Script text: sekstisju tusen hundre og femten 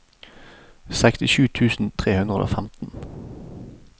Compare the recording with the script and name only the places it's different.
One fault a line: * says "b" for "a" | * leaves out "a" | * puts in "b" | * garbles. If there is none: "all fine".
* puts in "tre"